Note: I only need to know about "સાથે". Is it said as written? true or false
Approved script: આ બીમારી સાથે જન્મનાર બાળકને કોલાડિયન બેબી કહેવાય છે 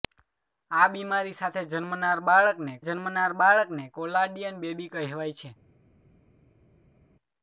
true